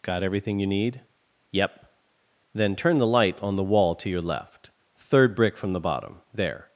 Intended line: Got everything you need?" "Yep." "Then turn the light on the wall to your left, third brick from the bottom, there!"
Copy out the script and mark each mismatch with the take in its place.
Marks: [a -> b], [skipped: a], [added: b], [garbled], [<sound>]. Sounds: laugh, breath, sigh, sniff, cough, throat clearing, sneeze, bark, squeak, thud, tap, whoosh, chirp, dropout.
Got everything you need?" "Yep." "Then turn the light on the wall to your left, third brick from the bottom, there!"